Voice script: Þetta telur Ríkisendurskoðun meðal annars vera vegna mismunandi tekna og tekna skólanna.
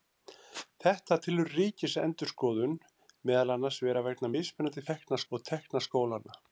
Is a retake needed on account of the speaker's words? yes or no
no